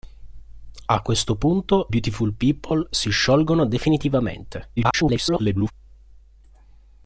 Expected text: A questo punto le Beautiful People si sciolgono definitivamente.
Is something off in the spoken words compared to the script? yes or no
yes